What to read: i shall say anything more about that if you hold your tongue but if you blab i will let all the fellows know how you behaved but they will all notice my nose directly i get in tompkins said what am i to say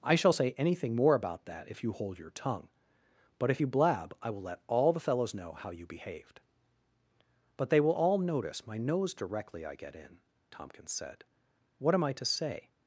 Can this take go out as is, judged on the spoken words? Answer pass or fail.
pass